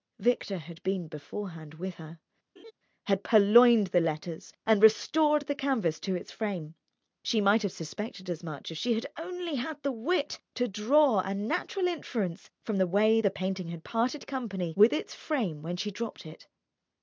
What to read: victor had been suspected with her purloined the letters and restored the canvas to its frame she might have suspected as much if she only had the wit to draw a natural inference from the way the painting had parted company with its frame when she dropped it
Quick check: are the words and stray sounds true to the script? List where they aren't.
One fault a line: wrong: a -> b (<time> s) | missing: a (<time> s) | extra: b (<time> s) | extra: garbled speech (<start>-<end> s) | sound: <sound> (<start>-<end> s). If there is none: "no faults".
wrong: suspected -> beforehand (1.1 s)
sound: laugh (2.6-2.7 s)
extra: had (3.0 s)
extra: had (8.9 s)